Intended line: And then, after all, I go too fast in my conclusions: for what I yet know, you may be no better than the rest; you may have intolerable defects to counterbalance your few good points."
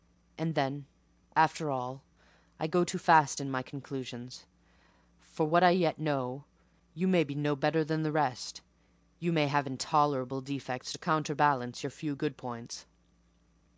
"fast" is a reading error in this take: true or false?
false